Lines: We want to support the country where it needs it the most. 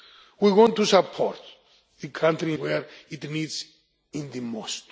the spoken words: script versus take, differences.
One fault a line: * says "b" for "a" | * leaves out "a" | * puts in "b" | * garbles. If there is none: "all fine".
all fine